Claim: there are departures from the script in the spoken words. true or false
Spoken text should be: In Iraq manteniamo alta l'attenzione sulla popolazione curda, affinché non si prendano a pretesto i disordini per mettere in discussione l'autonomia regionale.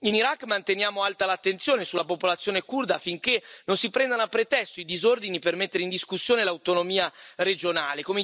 false